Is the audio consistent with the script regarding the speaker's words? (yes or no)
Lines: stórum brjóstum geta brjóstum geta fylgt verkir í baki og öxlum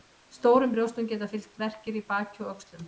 no